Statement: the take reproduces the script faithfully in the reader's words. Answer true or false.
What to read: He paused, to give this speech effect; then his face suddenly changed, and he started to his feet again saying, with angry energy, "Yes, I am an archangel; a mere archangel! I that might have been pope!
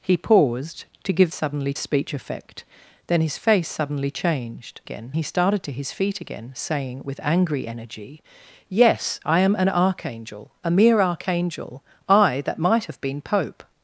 false